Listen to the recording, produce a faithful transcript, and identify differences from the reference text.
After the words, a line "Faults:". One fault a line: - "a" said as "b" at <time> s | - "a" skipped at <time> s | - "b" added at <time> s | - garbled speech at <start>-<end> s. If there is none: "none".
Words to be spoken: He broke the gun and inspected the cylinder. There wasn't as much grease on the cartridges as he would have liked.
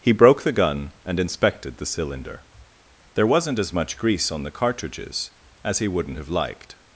He broke the gun and inspected the cylinder. There wasn't as much grease on the cartridges as he wouldn't have liked.
Faults:
- "would" said as "wouldn't" at 5.9 s